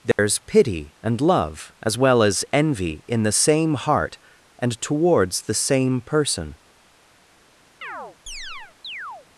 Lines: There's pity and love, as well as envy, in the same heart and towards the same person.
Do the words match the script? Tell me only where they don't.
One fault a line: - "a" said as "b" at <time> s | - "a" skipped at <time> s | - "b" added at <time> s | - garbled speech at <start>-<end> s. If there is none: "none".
none